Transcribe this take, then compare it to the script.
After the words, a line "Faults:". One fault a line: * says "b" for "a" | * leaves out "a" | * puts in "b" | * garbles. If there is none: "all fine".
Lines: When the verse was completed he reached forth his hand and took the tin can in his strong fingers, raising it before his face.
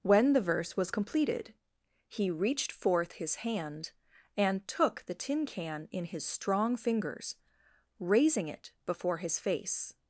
When the verse was completed he reached forth his hand and took the tin can in his strong fingers, raising it before his face.
Faults:
all fine